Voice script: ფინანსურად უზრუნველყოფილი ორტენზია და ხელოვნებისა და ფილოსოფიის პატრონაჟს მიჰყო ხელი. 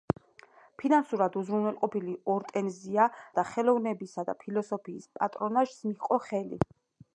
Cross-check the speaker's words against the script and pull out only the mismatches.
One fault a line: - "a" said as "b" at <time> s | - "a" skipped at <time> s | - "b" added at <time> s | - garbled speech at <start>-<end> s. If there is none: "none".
none